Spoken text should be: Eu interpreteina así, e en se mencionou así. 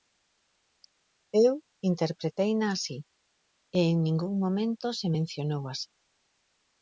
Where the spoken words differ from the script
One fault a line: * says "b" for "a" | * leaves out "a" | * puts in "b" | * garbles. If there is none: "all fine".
* puts in "ningún momento"